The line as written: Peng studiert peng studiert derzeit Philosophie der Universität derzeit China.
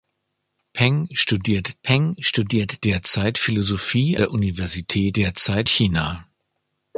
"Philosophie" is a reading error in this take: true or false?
false